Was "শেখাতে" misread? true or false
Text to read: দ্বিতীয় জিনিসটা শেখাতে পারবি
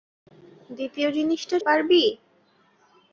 true